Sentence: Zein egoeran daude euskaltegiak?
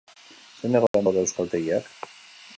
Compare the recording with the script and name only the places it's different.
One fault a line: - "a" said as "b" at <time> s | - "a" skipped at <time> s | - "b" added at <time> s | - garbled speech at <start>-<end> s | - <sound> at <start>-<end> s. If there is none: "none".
- dropout at 0.9-0.9 s